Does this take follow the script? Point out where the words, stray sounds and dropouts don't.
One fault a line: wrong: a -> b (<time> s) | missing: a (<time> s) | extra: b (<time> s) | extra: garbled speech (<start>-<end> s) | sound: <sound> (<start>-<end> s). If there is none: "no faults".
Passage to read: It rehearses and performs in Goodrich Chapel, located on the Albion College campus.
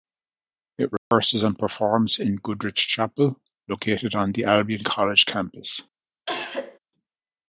sound: dropout (1.0-1.1 s)
sound: cough (6.3-6.8 s)